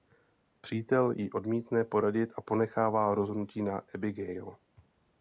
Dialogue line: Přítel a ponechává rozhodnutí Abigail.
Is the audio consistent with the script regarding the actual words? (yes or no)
no